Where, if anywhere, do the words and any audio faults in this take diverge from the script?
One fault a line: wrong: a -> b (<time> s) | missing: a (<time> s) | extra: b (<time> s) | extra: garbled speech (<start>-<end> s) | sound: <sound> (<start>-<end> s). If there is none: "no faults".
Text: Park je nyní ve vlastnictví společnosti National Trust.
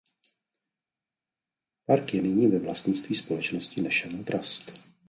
no faults